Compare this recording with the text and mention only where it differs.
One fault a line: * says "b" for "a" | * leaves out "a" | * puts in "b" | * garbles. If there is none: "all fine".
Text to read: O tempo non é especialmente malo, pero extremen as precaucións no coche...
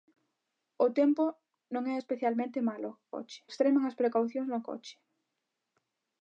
* says "coche" for "pero"